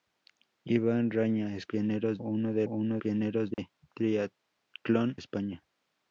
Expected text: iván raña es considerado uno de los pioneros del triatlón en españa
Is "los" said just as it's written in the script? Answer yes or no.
no